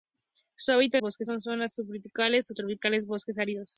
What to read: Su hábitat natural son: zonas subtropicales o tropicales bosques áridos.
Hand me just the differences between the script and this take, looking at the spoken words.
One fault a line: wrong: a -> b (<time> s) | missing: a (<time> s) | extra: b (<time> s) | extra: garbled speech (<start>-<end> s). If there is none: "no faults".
wrong: natural -> bosques (1.0 s)